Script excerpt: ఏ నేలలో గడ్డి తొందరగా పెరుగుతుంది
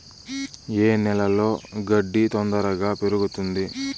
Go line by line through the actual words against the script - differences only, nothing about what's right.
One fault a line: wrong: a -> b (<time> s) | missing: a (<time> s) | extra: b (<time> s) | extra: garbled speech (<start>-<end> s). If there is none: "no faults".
no faults